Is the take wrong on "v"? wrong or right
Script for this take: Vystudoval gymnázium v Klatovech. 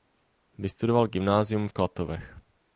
right